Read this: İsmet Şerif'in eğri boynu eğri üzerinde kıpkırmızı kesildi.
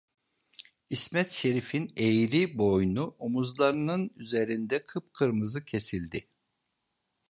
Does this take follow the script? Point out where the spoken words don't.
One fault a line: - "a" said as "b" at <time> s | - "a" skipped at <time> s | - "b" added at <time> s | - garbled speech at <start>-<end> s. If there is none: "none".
- "eğri" said as "omuzlarının" at 3.2 s